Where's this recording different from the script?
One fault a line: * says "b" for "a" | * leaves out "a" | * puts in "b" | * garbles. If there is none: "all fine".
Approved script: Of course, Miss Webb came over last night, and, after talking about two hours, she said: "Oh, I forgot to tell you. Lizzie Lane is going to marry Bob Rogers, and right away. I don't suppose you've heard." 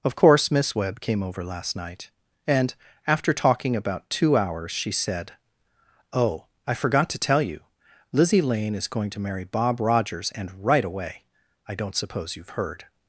all fine